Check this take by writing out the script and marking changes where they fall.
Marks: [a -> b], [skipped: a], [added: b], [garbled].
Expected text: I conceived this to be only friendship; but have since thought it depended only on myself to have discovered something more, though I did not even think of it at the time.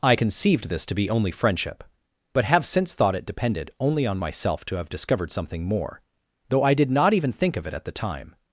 I conceived this to be only friendship; but have since thought it depended only on myself to have discovered something more, though I did not even think of it at the time.